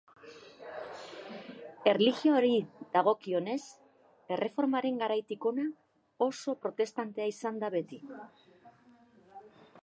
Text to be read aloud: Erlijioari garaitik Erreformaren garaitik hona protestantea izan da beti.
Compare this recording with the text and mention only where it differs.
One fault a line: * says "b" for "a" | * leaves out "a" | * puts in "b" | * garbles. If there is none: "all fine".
* says "dagokionez" for "garaitik"
* puts in "oso"